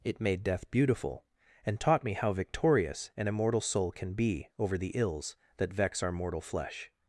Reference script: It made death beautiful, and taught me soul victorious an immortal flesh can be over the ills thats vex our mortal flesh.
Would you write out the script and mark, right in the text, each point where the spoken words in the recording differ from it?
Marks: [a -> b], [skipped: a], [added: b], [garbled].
It made death beautiful, and taught me [soul -> how] victorious an immortal [flesh -> soul] can be over the ills [thats -> that] vex our mortal flesh.